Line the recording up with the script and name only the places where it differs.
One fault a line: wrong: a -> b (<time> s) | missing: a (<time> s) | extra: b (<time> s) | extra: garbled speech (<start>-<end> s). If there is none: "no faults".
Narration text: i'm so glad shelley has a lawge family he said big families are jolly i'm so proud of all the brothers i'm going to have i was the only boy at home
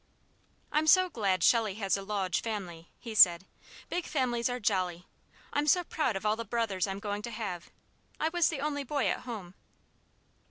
no faults